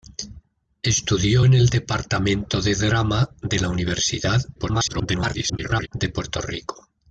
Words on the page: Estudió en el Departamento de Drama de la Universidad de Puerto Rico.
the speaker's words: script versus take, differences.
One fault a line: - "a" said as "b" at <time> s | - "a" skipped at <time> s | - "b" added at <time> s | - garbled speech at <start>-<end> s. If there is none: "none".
- garbled speech at 4.6-5.9 s